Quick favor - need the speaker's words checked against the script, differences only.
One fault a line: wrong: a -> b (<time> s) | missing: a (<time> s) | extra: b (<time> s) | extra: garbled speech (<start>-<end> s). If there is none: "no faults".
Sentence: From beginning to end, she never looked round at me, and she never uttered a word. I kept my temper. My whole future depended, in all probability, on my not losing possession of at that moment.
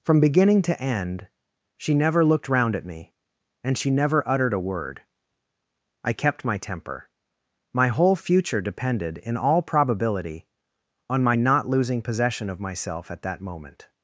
extra: myself (12.6 s)